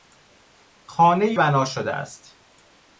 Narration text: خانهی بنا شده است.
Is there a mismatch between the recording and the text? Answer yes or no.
no